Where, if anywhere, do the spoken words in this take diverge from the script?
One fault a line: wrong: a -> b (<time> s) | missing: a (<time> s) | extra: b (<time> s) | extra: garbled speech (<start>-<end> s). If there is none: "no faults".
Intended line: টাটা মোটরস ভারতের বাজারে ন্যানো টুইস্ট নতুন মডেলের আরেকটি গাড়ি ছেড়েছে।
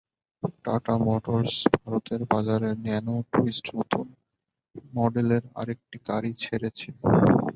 no faults